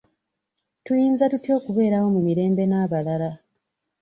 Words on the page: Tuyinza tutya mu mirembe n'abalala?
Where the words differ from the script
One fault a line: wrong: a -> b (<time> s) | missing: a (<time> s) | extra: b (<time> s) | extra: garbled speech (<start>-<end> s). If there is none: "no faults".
extra: okubeerawo (1.6 s)